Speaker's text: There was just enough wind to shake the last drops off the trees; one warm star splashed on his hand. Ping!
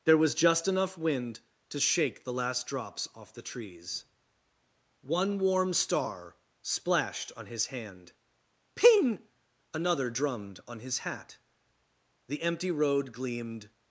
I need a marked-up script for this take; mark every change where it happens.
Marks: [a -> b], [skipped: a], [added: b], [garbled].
There was just enough wind to shake the last drops off the trees; one warm star splashed on his hand. Ping! [added: another drummed on his hat The empty road gleamed]